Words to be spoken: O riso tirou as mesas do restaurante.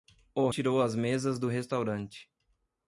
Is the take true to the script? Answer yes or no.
no